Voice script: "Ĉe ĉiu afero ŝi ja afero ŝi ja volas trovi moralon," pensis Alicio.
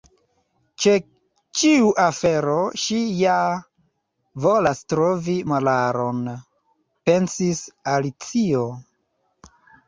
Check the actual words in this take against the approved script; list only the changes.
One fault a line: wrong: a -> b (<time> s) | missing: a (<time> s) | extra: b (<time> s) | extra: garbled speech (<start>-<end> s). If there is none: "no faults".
missing: afero ŝi ja (3.4 s)